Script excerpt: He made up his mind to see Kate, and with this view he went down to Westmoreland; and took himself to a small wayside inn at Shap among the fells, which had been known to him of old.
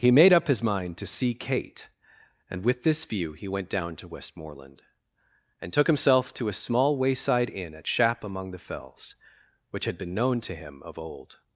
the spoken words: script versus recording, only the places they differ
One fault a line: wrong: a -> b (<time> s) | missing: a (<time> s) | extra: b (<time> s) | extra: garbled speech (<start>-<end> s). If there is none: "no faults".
no faults